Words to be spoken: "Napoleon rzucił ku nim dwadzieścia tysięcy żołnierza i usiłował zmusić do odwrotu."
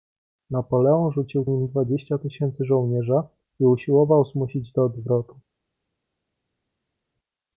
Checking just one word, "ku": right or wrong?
wrong